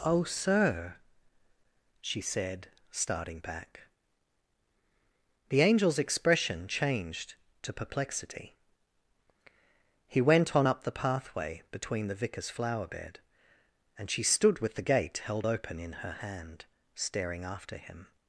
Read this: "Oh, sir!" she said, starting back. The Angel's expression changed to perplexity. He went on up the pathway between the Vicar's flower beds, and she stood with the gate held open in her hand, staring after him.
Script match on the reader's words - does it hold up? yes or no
no